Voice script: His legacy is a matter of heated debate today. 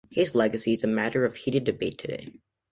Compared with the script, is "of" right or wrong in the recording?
right